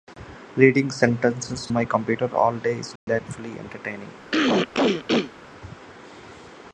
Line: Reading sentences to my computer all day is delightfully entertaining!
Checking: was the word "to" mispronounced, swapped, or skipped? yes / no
yes